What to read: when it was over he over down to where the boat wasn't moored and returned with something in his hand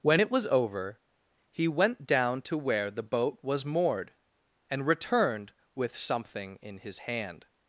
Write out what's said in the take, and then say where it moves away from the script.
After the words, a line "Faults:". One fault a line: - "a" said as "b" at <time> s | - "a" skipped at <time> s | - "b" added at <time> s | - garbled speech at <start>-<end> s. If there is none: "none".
when it was over he went down to where the boat was moored and returned with something in his hand
Faults:
- "over" said as "went" at 1.7 s
- "wasn't" said as "was" at 3.4 s